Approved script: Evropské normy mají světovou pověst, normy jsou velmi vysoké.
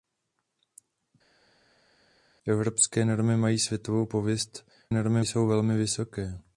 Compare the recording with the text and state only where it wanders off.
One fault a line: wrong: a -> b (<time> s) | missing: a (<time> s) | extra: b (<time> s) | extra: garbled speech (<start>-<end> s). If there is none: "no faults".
no faults